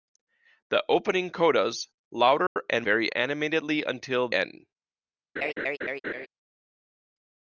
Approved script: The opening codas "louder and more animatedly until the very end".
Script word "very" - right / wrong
wrong